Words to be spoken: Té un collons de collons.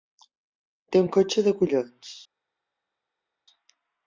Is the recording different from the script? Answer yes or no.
yes